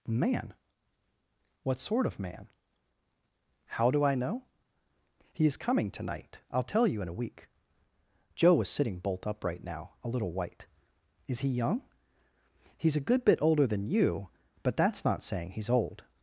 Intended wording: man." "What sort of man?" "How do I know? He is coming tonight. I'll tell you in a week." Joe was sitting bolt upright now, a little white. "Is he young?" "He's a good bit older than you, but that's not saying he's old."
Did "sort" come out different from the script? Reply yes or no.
no